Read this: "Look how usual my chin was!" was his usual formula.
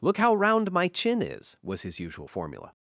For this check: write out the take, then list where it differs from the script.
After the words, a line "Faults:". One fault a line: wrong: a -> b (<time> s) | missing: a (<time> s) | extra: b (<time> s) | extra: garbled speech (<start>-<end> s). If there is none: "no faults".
"Look how round my chin is!" was his usual formula.
Faults:
wrong: usual -> round (0.3 s)
wrong: was -> is (1.2 s)